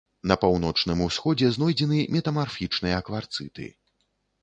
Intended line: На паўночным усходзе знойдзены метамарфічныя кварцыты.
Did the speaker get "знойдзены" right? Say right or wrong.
right